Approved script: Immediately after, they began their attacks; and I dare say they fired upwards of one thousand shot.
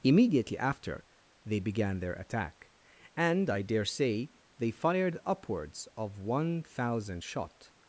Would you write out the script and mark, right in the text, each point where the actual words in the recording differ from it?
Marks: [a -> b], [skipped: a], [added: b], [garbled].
Immediately after, they began their [attacks; -> attack] and I dare say they fired upwards of one thousand shot.